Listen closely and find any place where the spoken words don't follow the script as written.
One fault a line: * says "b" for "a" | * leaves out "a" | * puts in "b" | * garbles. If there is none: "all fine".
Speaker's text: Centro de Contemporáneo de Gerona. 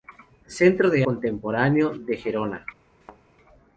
all fine